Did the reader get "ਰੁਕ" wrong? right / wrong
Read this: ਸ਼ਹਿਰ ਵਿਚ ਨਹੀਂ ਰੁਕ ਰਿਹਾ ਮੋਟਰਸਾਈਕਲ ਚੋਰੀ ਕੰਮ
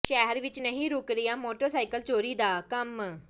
right